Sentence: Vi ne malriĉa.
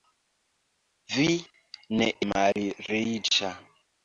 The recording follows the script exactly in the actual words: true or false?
true